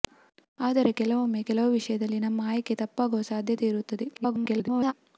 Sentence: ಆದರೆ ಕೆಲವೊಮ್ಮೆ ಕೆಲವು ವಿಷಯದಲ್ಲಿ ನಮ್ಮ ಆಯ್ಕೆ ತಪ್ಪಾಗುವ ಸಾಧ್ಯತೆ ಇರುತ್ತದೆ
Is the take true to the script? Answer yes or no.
no